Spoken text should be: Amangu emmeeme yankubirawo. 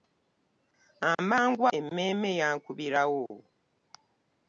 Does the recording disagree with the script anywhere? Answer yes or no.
no